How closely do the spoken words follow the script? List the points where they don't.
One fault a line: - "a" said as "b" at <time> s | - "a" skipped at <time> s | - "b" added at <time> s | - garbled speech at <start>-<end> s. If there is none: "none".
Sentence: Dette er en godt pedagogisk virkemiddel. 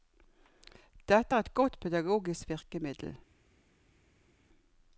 - "en" said as "et" at 1.4 s